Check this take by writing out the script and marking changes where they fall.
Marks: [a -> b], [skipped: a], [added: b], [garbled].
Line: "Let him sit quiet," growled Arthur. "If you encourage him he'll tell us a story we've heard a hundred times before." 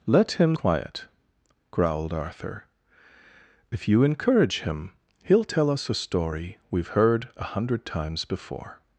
"Let him [skipped: sit] quiet," growled Arthur. "If you encourage him he'll tell us a story we've heard a hundred times before."